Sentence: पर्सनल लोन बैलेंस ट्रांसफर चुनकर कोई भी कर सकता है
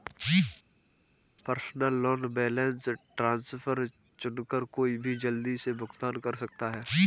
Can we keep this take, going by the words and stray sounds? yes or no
no